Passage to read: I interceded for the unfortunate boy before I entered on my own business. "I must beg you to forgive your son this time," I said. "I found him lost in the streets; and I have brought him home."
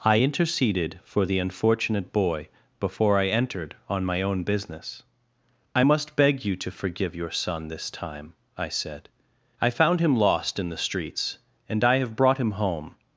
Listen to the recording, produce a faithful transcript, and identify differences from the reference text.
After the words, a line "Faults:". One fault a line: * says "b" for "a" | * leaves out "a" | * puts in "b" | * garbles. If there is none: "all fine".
I interceded for the unfortunate boy before I entered on my own business. "I must beg you to forgive your son this time," I said. "I found him lost in the streets; and I have brought him home."
Faults:
all fine